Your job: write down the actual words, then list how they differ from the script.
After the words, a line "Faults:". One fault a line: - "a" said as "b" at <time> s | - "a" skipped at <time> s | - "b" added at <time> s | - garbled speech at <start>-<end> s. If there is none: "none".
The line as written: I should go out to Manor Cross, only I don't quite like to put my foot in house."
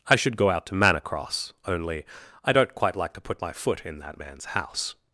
I should go out to Manor Cross, only I don't quite like to put my foot in that man's house."
Faults:
- "that man's" added at 4.0 s